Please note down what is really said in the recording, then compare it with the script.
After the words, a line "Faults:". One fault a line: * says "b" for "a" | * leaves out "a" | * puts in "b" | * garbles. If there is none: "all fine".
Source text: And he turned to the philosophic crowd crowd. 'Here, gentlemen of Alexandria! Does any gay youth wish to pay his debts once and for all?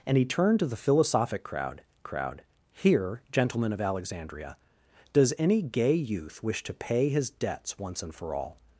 And he turned to the philosophic crowd crowd. 'Here, gentlemen of Alexandria! Does any gay youth wish to pay his debts once and for all?
Faults:
all fine